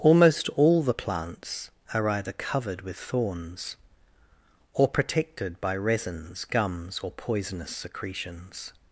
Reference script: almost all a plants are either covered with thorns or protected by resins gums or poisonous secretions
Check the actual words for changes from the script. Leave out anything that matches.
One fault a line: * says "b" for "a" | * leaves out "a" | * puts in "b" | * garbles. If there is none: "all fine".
* says "the" for "a"